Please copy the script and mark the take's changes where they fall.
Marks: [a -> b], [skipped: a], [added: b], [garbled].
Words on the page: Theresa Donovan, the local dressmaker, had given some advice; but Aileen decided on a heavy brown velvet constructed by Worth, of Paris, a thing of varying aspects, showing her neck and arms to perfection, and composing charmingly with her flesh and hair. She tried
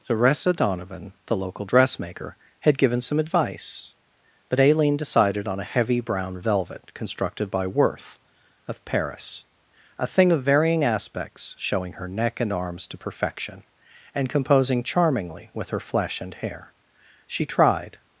Theresa Donovan, the local dressmaker, had given some advice; but Aileen decided on a heavy brown velvet constructed by Worth, of Paris, a thing of varying aspects, showing her neck and arms to perfection, and composing charmingly with her flesh and hair. She tried